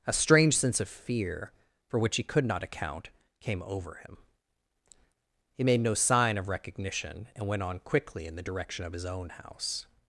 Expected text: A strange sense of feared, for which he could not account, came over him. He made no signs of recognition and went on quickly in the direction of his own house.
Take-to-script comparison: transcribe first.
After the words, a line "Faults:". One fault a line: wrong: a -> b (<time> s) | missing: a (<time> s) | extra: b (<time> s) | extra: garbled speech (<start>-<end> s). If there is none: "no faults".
A strange sense of fear, for which he could not account, came over him. He made no sign of recognition and went on quickly in the direction of his own house.
Faults:
wrong: feared -> fear (0.9 s)
wrong: signs -> sign (5.9 s)